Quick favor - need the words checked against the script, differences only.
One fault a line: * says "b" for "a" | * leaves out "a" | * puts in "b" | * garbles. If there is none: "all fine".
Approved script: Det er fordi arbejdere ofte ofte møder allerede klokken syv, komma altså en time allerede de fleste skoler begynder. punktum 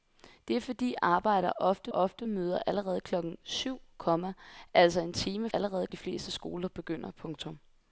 all fine